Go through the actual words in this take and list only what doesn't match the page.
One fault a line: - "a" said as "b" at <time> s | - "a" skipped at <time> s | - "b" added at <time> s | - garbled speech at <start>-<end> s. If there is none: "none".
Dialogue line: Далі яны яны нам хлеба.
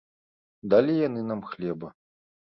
- "яны" skipped at 1.2 s